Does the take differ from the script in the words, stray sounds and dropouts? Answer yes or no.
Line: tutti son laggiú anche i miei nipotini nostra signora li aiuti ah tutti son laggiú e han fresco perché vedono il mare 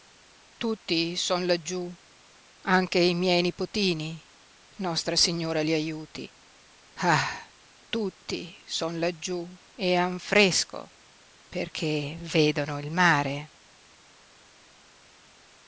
no